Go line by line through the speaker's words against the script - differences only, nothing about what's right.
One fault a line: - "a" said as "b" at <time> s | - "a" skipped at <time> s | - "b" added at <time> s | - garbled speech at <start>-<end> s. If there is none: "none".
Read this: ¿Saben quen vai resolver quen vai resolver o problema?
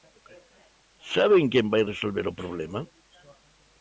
- "quen vai resolver" skipped at 2.2 s